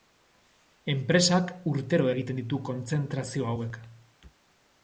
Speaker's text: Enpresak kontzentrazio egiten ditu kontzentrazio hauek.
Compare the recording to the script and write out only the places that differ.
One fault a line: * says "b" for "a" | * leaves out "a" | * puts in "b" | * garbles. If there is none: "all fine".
* says "urtero" for "kontzentrazio"